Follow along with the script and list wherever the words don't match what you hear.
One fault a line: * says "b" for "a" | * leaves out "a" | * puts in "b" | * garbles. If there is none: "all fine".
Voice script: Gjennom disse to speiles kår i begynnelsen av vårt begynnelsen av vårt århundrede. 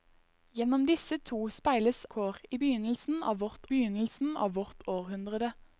all fine